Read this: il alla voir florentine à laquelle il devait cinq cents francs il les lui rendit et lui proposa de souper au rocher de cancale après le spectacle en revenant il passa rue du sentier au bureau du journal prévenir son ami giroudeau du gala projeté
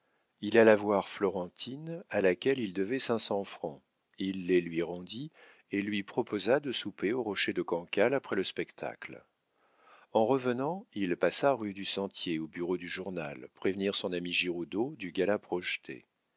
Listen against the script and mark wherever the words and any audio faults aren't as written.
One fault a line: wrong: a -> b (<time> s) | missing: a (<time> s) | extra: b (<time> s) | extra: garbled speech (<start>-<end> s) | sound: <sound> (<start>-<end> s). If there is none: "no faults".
no faults